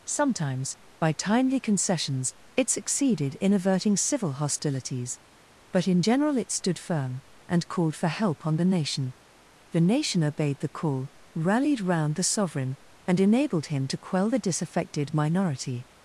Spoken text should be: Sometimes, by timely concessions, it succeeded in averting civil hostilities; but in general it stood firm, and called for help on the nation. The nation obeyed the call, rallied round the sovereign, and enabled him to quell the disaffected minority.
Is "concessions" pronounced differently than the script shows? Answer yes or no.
no